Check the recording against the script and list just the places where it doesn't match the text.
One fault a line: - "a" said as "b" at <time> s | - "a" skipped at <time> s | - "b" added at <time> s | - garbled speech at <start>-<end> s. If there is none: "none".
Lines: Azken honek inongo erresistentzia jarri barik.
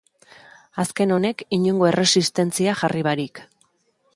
none